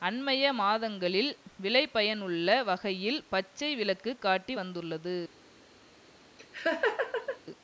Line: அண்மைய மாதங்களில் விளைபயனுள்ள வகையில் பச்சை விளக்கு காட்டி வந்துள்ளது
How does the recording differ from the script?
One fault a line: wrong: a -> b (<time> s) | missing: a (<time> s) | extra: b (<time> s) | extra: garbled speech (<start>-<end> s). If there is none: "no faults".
no faults